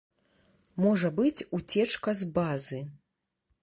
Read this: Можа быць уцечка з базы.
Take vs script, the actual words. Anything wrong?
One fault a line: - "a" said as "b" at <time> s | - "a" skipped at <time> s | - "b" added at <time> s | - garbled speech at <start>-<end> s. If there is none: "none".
none